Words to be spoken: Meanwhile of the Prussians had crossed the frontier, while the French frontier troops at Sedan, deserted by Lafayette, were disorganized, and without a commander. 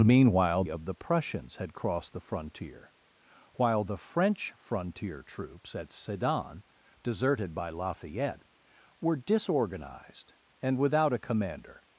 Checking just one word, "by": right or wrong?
right